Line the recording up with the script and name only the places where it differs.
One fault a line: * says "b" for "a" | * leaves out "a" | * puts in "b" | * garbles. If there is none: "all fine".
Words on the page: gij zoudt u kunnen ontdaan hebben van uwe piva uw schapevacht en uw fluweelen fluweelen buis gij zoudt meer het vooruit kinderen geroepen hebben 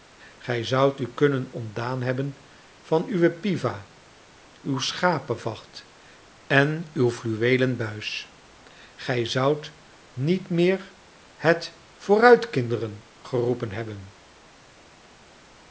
* leaves out "fluweelen"
* puts in "niet"